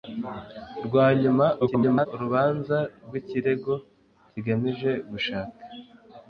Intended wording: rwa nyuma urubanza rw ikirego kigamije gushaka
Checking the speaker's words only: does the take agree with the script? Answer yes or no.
no